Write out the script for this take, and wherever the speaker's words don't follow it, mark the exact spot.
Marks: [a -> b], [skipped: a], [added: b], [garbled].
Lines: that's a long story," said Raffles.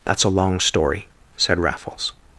that's a long story," said Raffles.